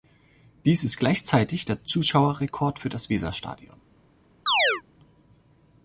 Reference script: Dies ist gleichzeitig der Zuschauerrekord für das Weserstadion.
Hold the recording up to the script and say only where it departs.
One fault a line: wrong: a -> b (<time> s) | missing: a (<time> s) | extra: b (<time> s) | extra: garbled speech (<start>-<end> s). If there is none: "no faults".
no faults